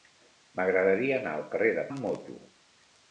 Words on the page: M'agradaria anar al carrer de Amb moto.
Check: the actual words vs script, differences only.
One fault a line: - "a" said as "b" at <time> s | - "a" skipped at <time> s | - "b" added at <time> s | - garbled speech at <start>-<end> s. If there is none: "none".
none